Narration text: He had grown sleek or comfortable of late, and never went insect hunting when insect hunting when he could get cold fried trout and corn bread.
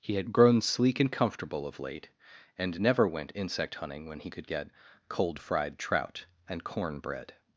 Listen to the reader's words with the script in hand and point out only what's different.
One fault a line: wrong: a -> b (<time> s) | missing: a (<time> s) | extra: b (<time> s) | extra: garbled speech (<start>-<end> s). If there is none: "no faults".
wrong: or -> and (1.0 s)
missing: insect hunting when (4.2 s)